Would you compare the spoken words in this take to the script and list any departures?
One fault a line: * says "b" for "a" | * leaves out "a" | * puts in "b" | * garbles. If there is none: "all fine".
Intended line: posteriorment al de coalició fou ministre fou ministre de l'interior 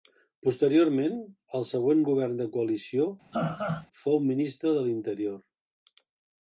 * puts in "següent govern"
* leaves out "fou ministre"